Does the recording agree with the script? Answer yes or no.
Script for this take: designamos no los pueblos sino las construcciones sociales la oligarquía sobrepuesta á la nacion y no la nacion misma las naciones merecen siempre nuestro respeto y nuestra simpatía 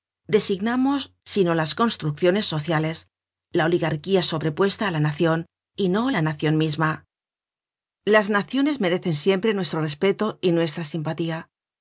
no